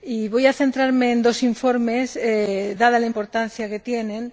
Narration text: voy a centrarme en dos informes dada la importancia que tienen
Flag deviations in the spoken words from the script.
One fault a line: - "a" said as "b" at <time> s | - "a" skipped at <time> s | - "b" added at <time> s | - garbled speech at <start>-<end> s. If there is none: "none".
none